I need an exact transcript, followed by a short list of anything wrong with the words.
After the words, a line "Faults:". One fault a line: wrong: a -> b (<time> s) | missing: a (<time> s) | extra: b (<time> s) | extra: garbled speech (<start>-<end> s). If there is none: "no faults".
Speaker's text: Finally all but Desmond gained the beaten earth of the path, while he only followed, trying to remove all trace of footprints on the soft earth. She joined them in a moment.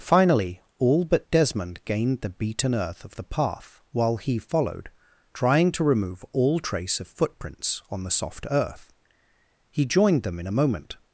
Finally all but Desmond gained the beaten earth of the path, while he followed, trying to remove all trace of footprints on the soft earth. He joined them in a moment.
Faults:
missing: only (4.4 s)
wrong: She -> He (9.7 s)